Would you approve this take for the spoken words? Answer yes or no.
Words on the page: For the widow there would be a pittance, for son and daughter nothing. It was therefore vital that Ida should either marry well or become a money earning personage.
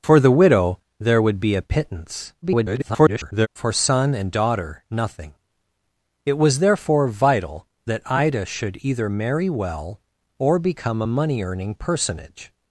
no